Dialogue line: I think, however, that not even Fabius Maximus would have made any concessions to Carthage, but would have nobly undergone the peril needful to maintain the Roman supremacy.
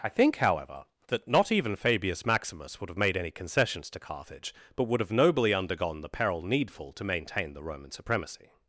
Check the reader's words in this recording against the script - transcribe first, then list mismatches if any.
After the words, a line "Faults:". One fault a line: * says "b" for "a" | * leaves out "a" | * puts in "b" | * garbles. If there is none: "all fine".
I think, however, that not even Fabius Maximus would have made any concessions to Carthage, but would have nobly undergone the peril needful to maintain the Roman supremacy.
Faults:
all fine